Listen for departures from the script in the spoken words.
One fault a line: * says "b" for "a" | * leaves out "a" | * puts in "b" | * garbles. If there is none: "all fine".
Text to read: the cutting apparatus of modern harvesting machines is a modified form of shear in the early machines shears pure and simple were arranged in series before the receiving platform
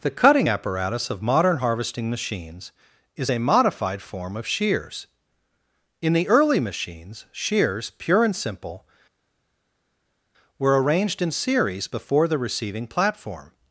* says "shears" for "shear"